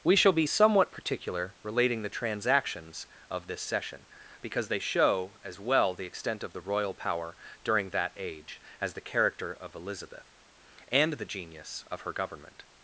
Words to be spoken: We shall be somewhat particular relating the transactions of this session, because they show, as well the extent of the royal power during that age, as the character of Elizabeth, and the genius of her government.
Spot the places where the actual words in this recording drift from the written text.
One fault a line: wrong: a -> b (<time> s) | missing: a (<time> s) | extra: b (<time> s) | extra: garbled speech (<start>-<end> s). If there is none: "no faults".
no faults